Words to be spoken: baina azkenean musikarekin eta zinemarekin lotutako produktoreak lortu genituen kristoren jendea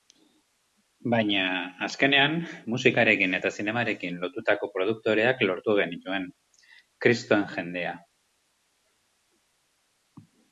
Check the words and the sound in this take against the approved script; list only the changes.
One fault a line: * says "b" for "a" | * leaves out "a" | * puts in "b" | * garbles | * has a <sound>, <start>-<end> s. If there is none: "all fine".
all fine